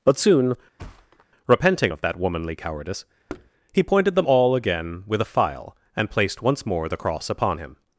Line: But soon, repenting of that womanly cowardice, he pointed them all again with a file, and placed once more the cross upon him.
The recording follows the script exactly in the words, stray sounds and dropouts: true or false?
false